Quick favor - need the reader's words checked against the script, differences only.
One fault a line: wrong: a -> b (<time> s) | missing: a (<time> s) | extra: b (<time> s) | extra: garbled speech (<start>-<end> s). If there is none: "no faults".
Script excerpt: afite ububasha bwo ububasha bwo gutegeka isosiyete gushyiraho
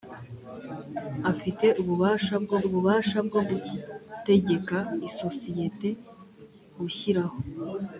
no faults